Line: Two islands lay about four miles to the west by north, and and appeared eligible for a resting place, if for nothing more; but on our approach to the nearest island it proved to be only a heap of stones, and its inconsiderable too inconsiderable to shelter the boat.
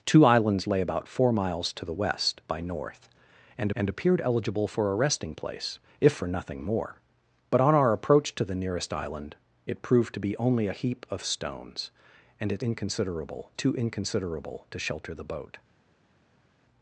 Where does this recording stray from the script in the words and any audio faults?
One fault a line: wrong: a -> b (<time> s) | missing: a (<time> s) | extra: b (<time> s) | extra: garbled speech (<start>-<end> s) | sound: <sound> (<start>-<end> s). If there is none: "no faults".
no faults